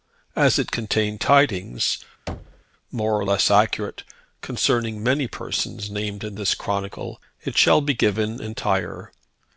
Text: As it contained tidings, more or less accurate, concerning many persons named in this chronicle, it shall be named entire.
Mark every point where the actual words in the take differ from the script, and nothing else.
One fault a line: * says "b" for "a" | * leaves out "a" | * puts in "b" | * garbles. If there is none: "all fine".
* says "given" for "named"